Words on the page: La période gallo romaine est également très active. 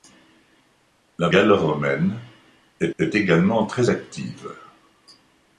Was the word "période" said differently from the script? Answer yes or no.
yes